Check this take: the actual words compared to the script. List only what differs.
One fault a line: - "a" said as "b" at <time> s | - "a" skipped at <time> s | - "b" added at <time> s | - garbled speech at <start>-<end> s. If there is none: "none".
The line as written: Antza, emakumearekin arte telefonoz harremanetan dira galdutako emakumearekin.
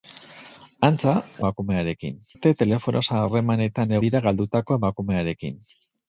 none